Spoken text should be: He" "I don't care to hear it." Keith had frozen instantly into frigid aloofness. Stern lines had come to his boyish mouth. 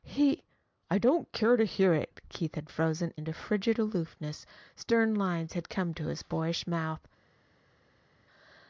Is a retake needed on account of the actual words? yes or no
yes